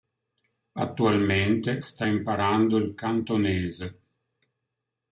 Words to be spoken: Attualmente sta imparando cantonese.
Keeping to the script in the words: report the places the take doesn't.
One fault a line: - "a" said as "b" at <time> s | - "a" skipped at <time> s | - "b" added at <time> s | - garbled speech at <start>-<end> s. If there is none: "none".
- "il" added at 2.8 s